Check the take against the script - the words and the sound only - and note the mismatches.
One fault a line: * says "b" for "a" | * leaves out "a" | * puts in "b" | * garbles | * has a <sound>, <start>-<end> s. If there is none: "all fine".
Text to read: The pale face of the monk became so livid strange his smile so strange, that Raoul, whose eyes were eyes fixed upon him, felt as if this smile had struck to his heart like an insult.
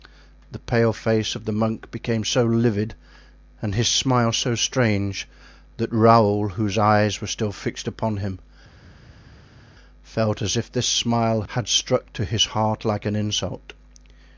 * says "and" for "strange"
* says "still" for "eyes"